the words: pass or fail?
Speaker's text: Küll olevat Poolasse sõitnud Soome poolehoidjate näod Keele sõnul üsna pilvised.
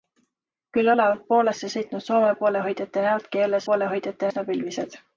fail